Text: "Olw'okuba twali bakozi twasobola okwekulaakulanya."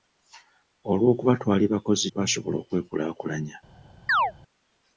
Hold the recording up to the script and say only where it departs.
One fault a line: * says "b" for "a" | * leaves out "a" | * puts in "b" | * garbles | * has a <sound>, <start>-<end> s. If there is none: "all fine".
* has a chirp, 4.1-4.3 s